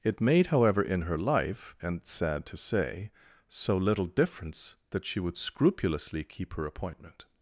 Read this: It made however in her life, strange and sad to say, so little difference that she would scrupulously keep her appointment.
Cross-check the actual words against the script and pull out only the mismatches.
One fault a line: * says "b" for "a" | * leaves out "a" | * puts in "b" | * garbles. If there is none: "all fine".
* leaves out "strange"